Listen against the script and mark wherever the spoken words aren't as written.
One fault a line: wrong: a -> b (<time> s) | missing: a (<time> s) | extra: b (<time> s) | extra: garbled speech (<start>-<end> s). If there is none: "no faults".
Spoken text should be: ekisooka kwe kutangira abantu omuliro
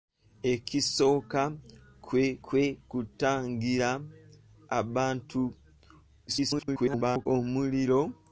extra: kwe (2.5 s)
extra: garbled speech (6.3-7.3 s)